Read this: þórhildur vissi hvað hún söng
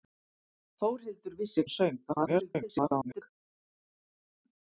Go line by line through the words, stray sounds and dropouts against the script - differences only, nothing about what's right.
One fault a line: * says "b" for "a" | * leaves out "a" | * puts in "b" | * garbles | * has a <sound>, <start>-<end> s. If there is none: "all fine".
* leaves out "hvað"
* garbles